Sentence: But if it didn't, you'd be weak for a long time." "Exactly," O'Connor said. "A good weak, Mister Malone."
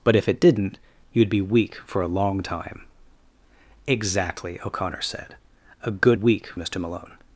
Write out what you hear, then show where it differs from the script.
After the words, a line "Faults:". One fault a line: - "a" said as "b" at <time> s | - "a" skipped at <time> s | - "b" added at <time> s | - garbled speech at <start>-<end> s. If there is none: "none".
But if it didn't, you'd be weak for a long time." "Exactly," O'Connor said. "A good weak, Mister Malone."
Faults:
none